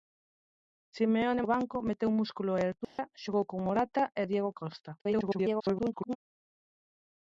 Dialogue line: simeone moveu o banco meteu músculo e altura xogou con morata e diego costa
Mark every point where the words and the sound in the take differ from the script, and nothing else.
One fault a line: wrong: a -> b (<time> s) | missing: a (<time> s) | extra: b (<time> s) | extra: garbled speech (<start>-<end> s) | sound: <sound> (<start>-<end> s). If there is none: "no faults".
missing: moveu (1.4 s)
sound: dropout (2.8-3.0 s)
extra: garbled speech (5.0-6.2 s)